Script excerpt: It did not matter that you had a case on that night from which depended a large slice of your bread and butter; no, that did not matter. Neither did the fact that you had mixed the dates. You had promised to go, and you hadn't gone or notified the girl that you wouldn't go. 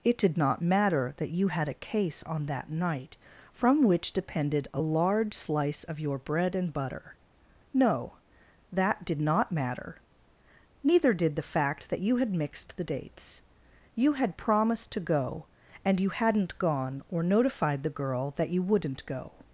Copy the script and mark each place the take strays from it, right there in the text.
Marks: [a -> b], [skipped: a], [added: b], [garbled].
It did not matter that you had a case on that night from which depended a large slice of your bread and butter; no, that did not matter. Neither did the fact that you had mixed the dates. You had promised to go, and you hadn't gone or notified the girl that you wouldn't go.